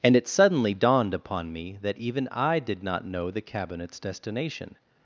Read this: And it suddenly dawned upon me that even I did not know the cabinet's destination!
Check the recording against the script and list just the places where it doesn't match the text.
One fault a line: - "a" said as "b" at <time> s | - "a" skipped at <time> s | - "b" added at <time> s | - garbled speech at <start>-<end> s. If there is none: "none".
none